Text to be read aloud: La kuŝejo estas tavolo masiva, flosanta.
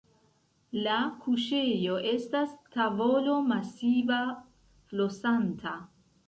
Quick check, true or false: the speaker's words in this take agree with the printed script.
true